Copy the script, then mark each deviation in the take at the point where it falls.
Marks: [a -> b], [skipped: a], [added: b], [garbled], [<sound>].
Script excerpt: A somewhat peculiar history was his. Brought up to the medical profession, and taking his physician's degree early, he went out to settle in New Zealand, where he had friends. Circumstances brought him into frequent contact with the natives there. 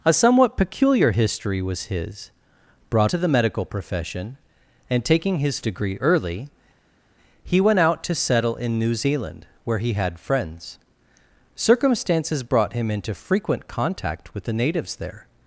A somewhat peculiar history was his. Brought [skipped: up] to the medical profession, and taking his [skipped: physician's] degree early, he went out to settle in New Zealand, where he had friends. Circumstances brought him into frequent contact with the natives there.